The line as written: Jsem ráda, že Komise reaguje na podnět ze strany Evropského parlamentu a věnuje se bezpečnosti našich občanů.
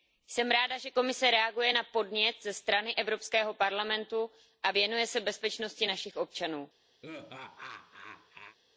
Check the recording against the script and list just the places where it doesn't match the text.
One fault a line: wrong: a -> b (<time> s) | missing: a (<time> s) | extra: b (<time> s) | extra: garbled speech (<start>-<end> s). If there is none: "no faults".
no faults